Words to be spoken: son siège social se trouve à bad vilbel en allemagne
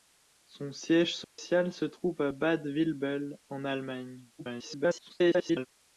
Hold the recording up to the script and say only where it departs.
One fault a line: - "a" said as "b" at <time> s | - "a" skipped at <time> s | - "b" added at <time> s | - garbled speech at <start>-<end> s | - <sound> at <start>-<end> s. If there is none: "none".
- dropout at 1.2-1.4 s
- garbled speech at 4.4-5.7 s